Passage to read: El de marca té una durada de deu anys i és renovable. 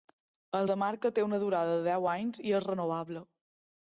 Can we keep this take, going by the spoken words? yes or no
yes